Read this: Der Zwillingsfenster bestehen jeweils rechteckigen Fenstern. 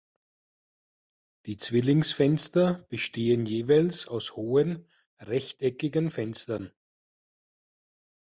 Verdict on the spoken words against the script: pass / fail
fail